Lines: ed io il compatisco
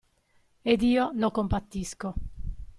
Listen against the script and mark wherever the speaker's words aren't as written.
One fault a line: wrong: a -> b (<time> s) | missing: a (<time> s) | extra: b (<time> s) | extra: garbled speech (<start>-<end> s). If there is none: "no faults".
wrong: il -> lo (1.1 s)